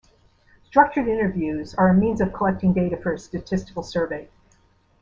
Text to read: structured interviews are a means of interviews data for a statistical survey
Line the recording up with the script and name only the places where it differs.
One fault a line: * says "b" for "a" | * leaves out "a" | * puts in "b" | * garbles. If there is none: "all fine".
* says "collecting" for "interviews"